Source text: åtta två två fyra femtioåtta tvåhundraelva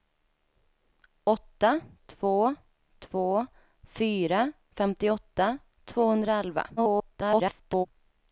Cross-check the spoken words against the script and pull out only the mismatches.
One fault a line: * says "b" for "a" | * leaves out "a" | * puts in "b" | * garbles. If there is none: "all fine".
* garbles